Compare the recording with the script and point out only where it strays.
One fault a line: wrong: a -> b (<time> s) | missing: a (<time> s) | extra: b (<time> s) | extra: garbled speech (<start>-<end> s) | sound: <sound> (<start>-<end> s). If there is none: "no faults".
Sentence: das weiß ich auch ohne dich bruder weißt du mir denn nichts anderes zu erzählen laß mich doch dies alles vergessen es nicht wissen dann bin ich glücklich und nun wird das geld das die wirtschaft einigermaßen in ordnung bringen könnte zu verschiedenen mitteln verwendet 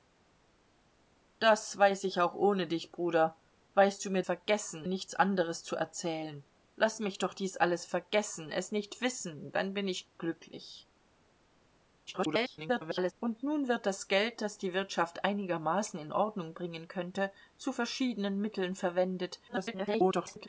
wrong: denn -> vergessen (4.2 s)
extra: garbled speech (12.1-13.1 s)
extra: garbled speech (19.5-20.5 s)